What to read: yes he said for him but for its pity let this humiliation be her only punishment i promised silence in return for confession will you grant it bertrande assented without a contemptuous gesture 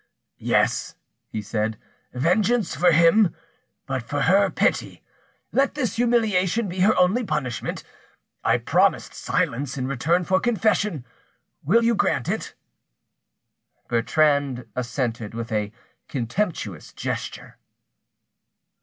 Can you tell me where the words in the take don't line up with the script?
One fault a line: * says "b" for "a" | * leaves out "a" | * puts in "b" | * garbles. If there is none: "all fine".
* puts in "vengeance"
* says "her" for "its"
* says "with" for "without"